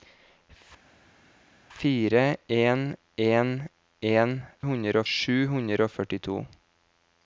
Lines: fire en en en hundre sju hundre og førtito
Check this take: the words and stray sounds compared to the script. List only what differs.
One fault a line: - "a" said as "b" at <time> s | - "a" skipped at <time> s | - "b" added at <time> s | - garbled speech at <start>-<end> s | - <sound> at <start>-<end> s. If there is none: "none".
none